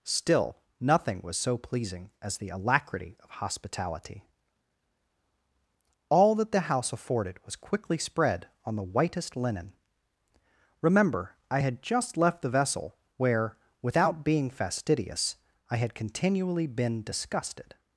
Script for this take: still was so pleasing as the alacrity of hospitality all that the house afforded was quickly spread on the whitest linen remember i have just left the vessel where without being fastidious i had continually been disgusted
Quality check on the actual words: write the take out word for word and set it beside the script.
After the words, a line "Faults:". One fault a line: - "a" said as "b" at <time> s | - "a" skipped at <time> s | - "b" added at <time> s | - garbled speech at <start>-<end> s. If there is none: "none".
still nothing was so pleasing as the alacrity of hospitality all that the house afforded was quickly spread on the whitest linen remember i had just left the vessel where without being fastidious i had continually been disgusted
Faults:
- "nothing" added at 0.8 s
- "have" said as "had" at 11.6 s